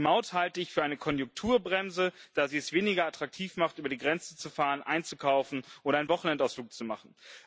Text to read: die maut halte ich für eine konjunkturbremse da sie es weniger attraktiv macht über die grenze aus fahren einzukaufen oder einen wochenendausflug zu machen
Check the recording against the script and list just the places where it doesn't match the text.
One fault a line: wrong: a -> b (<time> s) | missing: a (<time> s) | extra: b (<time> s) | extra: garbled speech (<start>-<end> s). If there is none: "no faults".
wrong: aus -> zu (4.3 s)